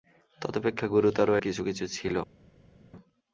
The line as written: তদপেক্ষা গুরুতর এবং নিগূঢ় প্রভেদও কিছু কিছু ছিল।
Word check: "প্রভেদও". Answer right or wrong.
wrong